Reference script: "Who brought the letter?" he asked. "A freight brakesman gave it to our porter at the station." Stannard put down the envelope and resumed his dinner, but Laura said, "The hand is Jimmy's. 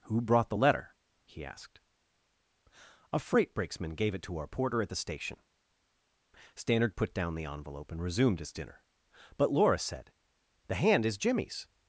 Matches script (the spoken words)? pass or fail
pass